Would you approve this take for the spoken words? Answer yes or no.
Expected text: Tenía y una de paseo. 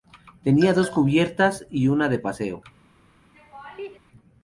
no